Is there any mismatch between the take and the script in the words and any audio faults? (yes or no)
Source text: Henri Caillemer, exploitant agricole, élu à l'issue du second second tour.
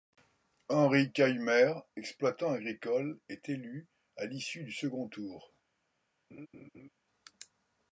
yes